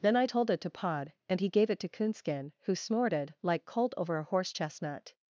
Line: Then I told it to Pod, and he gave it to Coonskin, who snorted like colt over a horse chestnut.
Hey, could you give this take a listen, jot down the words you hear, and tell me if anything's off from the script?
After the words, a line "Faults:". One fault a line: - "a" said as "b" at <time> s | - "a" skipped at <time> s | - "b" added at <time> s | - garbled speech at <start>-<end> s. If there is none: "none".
Then I told it to Pod, and he gave it to Coonskin, who snorted like colt over a horse chestnut.
Faults:
none